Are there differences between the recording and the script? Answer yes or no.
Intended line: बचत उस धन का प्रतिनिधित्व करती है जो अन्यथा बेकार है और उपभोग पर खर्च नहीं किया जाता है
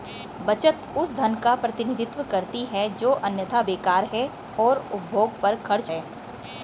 yes